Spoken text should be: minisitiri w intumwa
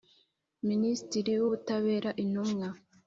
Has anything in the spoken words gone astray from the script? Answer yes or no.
yes